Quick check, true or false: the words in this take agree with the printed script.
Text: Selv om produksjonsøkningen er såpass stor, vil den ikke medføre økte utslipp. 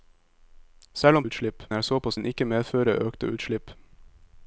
false